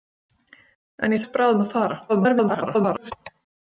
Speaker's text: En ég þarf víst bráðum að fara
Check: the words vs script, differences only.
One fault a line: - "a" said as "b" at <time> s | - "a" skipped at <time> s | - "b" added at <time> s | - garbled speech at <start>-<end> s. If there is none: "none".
- "þarf" skipped at 1.2 s
- garbled speech at 2.1-3.1 s